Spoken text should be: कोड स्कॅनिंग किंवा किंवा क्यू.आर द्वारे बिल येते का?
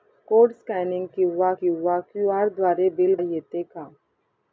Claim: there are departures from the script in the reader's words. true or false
false